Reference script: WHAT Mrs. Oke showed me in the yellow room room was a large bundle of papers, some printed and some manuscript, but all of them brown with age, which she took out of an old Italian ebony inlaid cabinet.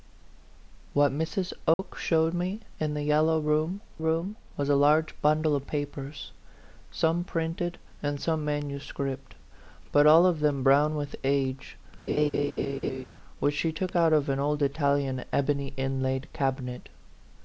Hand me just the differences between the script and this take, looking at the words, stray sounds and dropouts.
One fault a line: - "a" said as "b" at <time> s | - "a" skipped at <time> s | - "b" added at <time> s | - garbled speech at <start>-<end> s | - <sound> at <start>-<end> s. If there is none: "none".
- dropout at 1.7-1.8 s
- laugh at 12.1-13.0 s